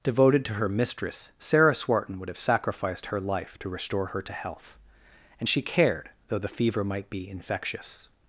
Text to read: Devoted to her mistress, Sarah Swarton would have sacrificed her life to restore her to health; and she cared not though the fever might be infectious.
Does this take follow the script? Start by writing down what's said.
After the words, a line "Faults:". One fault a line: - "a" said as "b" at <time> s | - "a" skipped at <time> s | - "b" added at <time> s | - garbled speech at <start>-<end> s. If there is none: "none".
Devoted to her mistress, Sarah Swarton would have sacrificed her life to restore her to health; and she cared though the fever might be infectious.
Faults:
- "not" skipped at 6.1 s